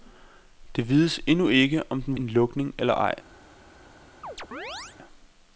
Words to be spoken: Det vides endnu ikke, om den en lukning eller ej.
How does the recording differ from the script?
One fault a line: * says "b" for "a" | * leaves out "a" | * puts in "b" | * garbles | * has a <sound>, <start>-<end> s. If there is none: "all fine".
* has a chirp, 4.2-5.0 s